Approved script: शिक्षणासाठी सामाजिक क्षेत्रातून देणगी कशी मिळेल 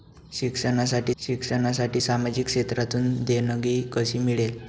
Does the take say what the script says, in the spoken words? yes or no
no